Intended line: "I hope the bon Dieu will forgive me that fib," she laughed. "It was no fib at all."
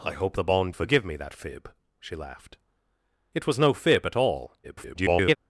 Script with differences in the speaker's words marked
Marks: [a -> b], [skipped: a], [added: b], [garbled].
"I hope the bon [skipped: Dieu will] forgive me that fib," she laughed. "It was no fib at all." [garbled]